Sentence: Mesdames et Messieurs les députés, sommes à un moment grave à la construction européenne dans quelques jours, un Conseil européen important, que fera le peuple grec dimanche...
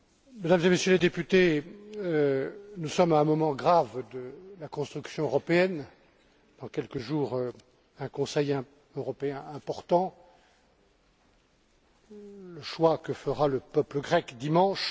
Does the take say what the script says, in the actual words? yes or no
no